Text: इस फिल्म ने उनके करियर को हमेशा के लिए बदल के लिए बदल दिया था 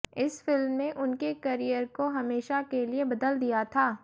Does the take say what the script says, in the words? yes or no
no